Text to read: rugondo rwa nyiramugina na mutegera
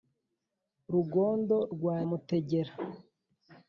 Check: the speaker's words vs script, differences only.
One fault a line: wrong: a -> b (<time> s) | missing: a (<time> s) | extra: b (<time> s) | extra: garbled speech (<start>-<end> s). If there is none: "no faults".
missing: nyiramugina na (2.0 s)